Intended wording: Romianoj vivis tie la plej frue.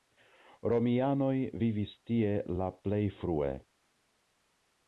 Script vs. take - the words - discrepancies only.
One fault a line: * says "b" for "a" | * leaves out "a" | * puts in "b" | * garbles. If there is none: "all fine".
all fine